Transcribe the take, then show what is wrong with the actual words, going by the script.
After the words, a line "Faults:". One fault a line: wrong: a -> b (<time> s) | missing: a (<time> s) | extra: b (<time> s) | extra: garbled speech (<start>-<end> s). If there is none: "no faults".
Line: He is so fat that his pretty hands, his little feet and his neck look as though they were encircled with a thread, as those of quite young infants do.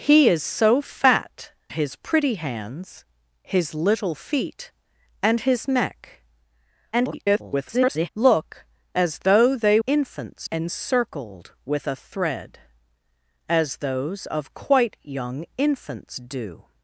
He is so fat his pretty hands, his little feet and his neck [garbled] look as though they infants encircled with a thread, as those of quite young infants do.
Faults:
missing: that (1.5 s)
extra: garbled speech (6.9-8.1 s)
wrong: were -> infants (9.9 s)